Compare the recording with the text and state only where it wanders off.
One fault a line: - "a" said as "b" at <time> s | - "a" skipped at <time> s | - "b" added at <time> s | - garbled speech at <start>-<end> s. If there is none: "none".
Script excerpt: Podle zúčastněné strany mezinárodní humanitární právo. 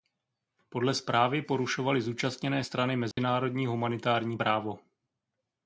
- "zprávy porušovaly" added at 0.9 s